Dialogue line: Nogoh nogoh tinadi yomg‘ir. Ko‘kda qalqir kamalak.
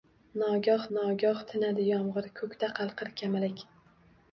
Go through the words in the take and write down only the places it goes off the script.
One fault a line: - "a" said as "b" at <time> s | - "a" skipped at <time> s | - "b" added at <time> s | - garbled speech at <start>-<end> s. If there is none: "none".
none